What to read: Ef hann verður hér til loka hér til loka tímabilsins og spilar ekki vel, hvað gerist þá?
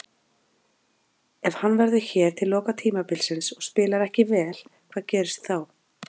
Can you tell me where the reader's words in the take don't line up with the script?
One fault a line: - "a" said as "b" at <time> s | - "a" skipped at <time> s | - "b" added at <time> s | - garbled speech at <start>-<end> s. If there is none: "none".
- "hér til loka" skipped at 2.8 s